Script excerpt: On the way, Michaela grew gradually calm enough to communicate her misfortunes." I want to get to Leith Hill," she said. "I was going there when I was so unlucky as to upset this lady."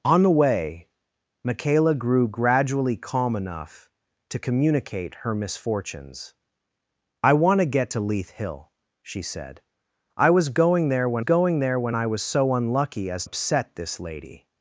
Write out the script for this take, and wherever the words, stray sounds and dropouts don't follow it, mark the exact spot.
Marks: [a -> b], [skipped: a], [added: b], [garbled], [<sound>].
On the way, Michaela grew gradually calm enough to communicate her misfortunes." I want to get to Leith Hill," she said. "I was going there when [added: going there when] I was so unlucky as [skipped: to] upset this lady."